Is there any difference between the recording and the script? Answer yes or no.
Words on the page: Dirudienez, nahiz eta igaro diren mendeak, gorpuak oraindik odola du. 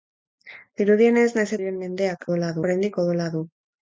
yes